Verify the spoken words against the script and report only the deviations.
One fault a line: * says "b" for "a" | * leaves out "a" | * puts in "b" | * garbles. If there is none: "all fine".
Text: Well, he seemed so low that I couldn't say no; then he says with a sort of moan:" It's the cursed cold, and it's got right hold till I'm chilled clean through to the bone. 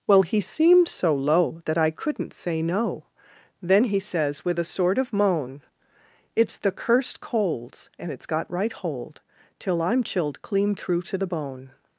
* says "colds" for "cold"